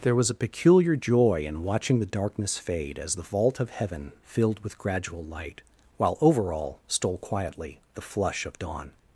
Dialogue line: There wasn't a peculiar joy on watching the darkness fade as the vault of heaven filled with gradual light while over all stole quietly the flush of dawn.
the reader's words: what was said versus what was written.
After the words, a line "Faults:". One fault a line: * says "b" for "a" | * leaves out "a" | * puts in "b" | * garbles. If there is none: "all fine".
There was a peculiar joy in watching the darkness fade as the vault of heaven filled with gradual light while over all stole quietly the flush of dawn.
Faults:
* says "was" for "wasn't"
* says "in" for "on"